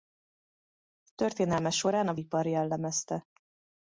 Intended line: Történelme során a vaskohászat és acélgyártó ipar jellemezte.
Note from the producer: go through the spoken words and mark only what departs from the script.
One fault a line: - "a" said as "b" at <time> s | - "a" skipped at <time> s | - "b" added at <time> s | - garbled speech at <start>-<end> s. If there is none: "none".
- "vaskohászat és acélgyártó" skipped at 2.1 s